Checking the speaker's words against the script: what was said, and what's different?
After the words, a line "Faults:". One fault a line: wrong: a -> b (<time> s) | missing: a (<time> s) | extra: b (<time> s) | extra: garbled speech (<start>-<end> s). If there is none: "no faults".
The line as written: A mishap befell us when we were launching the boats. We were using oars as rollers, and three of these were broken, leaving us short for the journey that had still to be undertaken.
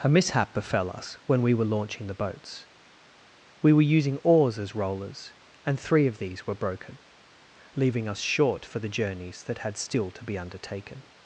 A mishap befell us when we were launching the boats. We were using oars as rollers, and three of these were broken, leaving us short for the journeys that had still to be undertaken.
Faults:
wrong: journey -> journeys (8.9 s)